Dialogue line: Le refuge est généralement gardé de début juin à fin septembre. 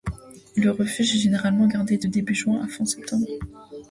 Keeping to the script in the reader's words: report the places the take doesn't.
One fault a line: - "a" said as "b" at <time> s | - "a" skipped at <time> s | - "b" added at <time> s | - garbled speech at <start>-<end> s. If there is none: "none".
none